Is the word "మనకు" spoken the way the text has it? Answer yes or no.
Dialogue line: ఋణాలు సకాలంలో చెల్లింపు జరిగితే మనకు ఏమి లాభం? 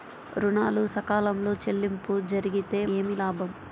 no